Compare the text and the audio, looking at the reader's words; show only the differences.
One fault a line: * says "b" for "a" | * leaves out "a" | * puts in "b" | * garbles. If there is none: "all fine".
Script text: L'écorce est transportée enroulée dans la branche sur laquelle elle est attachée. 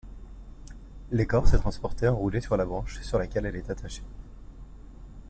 * says "sur" for "dans"